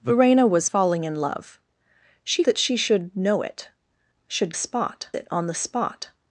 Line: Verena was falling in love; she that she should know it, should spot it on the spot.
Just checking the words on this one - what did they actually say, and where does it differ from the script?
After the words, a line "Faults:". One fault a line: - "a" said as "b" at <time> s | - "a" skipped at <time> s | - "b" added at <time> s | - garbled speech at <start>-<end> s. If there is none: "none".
Verena was falling in love; she that she should know it, should spot it on the spot.
Faults:
none